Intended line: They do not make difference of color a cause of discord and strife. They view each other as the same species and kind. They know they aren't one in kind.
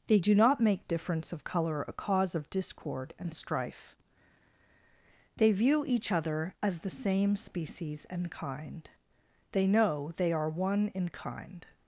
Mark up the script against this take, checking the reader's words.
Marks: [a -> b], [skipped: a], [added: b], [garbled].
They do not make difference of color a cause of discord and strife. They view each other as the same species and kind. They know they [aren't -> are] one in kind.